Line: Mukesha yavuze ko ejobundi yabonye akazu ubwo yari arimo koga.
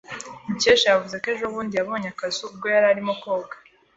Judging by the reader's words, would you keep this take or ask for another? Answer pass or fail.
pass